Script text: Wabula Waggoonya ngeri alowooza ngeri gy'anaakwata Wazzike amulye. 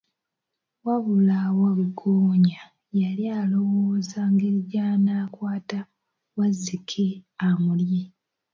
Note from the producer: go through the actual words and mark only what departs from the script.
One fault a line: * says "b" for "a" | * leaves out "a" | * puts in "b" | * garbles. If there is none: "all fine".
* says "yali" for "ngeri"